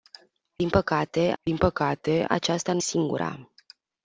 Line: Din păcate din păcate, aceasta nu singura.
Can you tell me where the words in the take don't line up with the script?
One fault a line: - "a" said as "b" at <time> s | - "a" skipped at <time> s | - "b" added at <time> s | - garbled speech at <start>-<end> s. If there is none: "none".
none